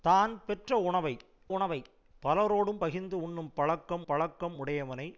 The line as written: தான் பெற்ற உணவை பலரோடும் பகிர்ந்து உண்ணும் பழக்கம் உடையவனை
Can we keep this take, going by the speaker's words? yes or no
no